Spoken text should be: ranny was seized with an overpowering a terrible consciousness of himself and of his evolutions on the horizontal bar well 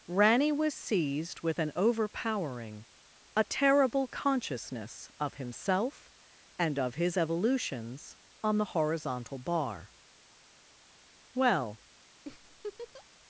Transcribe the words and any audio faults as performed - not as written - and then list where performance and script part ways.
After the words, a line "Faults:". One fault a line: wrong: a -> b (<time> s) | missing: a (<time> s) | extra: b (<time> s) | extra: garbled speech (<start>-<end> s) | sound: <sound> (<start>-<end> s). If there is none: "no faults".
ranny was seized with an overpowering a terrible consciousness of himself and of his evolutions on the horizontal bar well
Faults:
sound: laugh (12.3-13.1 s)